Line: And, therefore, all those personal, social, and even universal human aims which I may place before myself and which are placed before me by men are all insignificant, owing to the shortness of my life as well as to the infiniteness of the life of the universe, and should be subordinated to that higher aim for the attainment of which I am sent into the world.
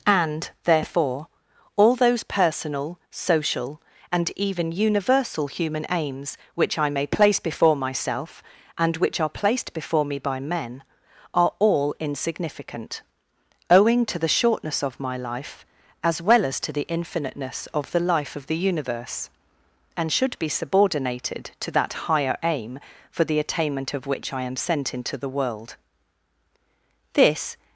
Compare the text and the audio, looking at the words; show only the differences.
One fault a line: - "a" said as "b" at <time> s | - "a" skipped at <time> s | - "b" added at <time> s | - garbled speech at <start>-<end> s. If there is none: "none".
- "This" added at 27.1 s